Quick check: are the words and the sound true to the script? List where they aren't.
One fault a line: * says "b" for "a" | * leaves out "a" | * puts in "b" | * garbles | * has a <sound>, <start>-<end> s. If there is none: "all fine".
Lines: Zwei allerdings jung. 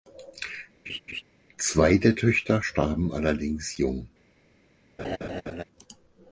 * has a laugh, 0.9-1.2 s
* puts in "der Töchter starben"
* has a laugh, 5.0-5.6 s